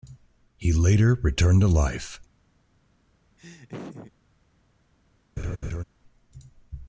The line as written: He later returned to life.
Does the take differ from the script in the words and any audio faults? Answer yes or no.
yes